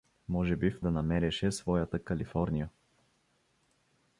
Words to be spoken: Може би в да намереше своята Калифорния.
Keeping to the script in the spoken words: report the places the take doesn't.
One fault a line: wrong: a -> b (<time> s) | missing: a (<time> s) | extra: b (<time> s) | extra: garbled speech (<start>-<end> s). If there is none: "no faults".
no faults